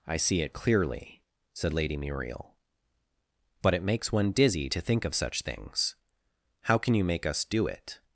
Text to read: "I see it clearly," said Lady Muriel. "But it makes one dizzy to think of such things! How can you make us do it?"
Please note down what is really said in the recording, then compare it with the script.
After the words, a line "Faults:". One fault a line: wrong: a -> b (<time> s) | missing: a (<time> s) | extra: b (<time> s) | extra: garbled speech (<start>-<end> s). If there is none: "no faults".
"I see it clearly," said Lady Muriel. "But it makes one dizzy to think of such things! How can you make us do it?"
Faults:
no faults